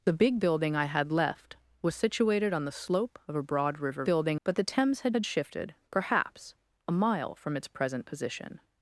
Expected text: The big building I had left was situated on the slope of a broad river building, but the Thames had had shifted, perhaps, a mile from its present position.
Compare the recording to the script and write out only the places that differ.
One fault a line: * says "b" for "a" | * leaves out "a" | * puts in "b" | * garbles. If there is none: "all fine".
all fine